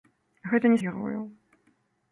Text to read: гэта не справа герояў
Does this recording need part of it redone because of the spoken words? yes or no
yes